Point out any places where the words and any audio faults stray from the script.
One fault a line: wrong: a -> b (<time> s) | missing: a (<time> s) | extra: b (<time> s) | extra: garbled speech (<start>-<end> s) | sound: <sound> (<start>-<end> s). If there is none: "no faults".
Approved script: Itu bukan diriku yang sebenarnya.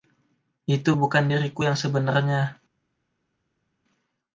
no faults